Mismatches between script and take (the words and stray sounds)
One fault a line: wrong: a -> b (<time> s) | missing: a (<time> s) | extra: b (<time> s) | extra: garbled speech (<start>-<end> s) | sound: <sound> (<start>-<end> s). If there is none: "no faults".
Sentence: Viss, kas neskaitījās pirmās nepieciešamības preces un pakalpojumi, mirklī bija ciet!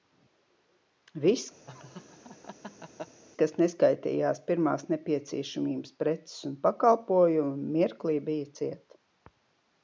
sound: laugh (1.7-3.2 s)